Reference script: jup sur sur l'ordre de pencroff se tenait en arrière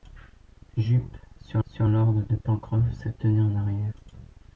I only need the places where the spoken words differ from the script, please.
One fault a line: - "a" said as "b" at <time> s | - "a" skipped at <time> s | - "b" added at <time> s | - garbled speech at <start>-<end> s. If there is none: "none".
none